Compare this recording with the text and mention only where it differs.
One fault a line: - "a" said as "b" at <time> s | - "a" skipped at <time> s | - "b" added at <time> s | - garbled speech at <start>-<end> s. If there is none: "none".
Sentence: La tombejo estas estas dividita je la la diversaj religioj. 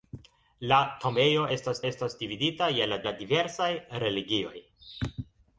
none